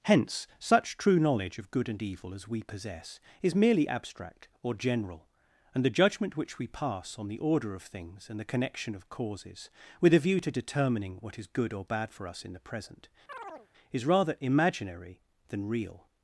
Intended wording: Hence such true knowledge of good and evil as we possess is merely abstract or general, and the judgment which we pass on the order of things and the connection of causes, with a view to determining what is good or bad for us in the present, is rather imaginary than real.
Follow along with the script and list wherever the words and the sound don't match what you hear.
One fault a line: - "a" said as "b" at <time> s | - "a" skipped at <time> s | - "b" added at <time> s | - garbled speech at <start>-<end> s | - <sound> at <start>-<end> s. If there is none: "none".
- chirp at 13.3-13.7 s